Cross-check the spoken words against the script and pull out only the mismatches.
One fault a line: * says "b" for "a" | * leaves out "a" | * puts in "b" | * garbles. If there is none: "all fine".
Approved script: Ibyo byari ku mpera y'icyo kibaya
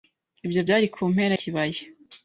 * leaves out "y'icyo"